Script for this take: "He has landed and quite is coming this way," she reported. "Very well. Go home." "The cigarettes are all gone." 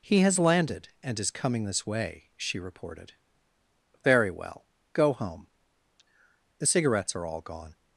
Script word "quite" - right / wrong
wrong